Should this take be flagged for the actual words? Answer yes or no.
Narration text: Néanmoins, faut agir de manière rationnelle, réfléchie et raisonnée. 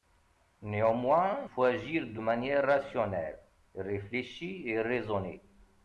no